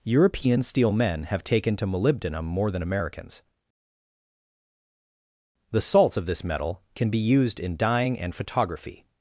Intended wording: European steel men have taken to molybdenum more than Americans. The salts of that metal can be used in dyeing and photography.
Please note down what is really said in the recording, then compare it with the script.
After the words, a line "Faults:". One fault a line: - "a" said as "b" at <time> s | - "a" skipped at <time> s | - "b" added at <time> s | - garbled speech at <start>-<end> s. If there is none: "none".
European steel men have taken to molybdenum more than Americans. The salts of this metal can be used in dyeing and photography.
Faults:
- "that" said as "this" at 6.2 s